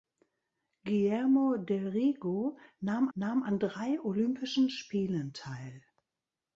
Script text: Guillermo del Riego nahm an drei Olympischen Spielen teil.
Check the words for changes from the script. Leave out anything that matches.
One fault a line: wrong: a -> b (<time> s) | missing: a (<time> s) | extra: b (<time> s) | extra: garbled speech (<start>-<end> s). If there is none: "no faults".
extra: nahm (3.1 s)